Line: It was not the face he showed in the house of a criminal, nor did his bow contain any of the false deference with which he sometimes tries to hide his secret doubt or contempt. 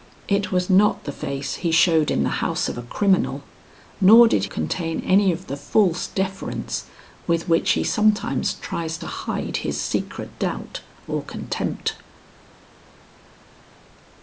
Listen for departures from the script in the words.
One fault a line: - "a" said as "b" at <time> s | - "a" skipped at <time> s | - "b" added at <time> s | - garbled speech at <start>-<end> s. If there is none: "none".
- "his bow" skipped at 4.5 s